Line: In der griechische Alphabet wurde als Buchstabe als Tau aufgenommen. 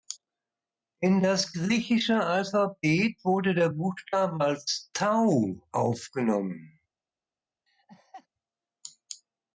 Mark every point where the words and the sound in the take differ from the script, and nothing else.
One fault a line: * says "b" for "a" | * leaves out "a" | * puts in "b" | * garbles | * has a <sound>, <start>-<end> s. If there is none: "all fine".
* says "das" for "der"
* says "der" for "als"
* has a laugh, 7.7-8.3 s